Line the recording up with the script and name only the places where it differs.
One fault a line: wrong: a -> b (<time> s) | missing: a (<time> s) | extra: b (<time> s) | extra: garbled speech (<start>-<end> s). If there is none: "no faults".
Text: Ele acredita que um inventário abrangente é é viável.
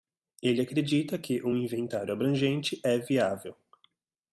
missing: é (3.0 s)